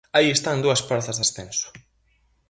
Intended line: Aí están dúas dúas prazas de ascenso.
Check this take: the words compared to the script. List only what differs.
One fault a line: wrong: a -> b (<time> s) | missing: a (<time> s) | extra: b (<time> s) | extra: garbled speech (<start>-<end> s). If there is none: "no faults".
missing: dúas (0.8 s)